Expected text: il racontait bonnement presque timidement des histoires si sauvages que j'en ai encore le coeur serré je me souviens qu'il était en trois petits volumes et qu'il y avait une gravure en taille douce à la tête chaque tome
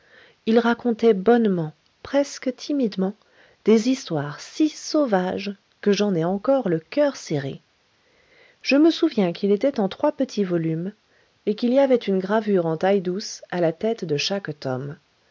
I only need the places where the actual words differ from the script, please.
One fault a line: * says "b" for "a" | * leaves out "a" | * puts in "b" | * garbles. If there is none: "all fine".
* puts in "de"